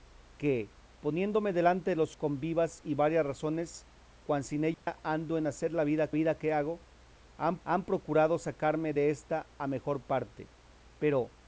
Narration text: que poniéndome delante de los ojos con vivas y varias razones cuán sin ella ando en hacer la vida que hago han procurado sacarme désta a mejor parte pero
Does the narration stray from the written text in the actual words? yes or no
yes